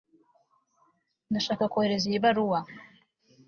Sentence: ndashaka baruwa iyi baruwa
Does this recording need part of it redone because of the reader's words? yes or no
yes